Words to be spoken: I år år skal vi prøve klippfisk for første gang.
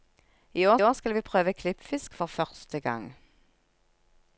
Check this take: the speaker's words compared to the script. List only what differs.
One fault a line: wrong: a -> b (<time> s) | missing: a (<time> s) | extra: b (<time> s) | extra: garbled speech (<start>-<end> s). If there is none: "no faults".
no faults